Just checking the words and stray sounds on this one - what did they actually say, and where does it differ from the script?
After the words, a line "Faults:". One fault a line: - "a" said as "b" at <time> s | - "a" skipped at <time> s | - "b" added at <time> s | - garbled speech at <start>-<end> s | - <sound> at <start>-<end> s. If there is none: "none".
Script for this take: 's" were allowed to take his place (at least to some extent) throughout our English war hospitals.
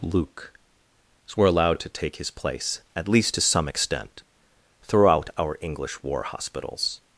'luke" were allowed to take his place (at least to some extent) throughout our English war hospitals.
Faults:
- "s" said as "luke" at 0.0 s